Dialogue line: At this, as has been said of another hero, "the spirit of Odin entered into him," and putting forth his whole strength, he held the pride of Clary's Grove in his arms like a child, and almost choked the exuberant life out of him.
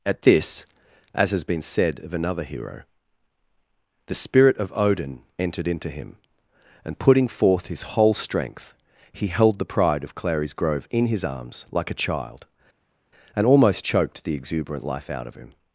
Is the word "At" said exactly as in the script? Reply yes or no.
yes